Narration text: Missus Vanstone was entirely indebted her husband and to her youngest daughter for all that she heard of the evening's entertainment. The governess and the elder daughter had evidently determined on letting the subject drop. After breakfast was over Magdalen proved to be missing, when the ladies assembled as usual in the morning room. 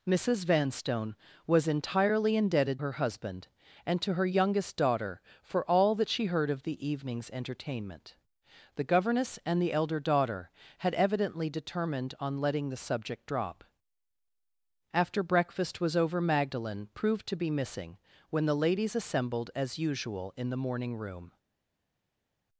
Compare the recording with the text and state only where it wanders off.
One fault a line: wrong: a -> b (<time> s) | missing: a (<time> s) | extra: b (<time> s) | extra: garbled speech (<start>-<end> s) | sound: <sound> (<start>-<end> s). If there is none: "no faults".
no faults